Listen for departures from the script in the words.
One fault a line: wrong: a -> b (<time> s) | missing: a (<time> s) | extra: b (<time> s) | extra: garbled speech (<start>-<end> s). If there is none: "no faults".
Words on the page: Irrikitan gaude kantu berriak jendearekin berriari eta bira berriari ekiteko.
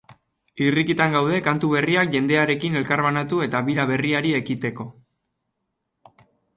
wrong: berriari -> elkarbanatu (2.8 s)